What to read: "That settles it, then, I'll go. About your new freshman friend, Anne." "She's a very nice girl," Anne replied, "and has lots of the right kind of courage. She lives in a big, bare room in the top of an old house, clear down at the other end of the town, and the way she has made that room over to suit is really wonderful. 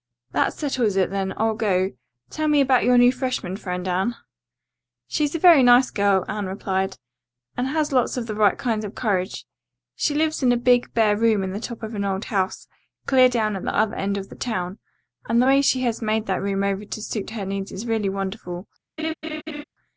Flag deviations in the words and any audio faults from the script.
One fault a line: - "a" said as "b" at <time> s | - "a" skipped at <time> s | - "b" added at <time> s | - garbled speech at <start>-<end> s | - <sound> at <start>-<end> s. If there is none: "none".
- "Tell me" added at 2.3 s
- "her needs" added at 17.3 s
- laugh at 19.0-19.6 s